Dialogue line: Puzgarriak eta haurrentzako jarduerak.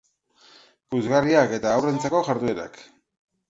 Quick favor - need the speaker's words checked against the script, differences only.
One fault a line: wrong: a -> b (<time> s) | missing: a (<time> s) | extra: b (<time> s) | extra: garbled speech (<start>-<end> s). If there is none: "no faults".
no faults